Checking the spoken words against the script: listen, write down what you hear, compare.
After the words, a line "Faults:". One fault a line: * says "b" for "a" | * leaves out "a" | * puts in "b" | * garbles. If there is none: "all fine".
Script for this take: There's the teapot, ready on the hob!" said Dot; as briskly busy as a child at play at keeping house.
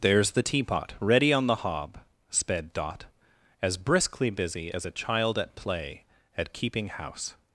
There's the teapot, ready on the hob!" sped Dot; as briskly busy as a child at play at keeping house.
Faults:
* says "sped" for "said"